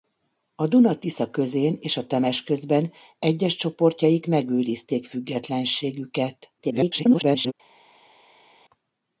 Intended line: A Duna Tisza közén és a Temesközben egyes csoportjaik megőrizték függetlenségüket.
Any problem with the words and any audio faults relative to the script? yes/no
yes